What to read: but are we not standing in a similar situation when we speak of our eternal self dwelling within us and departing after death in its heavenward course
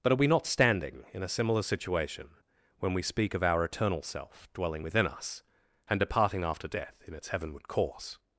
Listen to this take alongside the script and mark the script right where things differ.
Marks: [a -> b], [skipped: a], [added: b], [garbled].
but are we not standing in a similar situation when we speak of our eternal self dwelling within us and departing after death in its heavenward course